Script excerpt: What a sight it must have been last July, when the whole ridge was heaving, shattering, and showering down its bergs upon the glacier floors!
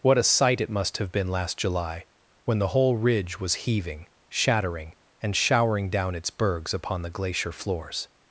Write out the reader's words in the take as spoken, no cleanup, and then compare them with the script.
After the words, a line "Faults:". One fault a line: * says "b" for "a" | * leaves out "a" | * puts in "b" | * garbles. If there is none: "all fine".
What a sight it must have been last July, when the whole ridge was heaving, shattering, and showering down its bergs upon the glacier floors!
Faults:
all fine